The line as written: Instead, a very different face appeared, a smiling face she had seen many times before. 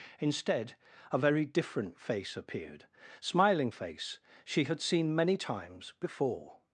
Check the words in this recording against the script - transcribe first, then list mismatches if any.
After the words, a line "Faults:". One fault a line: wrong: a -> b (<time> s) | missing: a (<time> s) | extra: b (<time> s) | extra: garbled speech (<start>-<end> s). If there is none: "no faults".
Instead, a very different face appeared, smiling face she had seen many times before.
Faults:
missing: a (2.9 s)